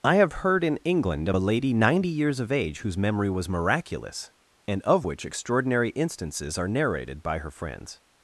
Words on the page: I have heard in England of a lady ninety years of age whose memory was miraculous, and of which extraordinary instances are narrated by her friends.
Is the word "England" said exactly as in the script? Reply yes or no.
yes